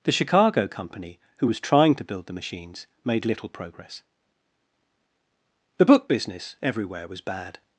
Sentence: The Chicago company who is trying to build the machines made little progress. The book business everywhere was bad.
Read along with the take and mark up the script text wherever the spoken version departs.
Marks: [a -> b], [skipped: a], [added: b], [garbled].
The Chicago company who [is -> was] trying to build the machines made little progress. The book business everywhere was bad.